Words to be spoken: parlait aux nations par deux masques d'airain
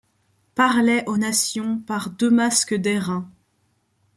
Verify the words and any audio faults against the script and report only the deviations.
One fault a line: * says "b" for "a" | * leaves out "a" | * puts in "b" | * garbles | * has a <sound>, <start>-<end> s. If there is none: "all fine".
all fine